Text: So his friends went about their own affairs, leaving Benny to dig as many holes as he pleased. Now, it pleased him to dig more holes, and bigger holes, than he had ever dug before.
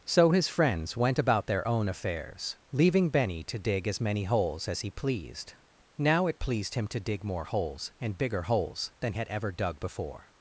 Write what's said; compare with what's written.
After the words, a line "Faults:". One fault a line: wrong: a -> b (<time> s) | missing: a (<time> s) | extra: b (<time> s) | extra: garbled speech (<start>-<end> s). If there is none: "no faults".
So his friends went about their own affairs, leaving Benny to dig as many holes as he pleased. Now, it pleased him to dig more holes, and bigger holes, than had ever dug before.
Faults:
missing: he (9.1 s)